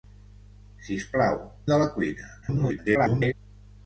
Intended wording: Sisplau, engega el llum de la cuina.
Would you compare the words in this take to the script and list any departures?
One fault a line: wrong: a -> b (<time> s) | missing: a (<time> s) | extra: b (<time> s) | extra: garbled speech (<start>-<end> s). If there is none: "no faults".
missing: engega el llum (1.4 s)
extra: garbled speech (2.4-3.3 s)